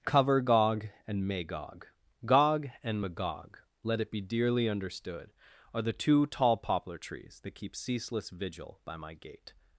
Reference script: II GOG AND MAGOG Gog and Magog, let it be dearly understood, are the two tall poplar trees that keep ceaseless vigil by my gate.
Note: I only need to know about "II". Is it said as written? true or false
false